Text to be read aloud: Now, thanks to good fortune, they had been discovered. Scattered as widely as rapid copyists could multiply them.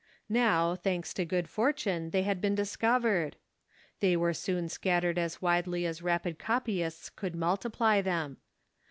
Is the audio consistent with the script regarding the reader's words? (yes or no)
no